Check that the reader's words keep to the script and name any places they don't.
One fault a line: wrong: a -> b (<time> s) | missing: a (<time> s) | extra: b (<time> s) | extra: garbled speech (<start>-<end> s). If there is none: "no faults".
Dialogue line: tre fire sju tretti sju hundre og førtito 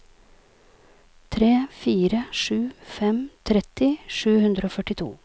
extra: fem (3.0 s)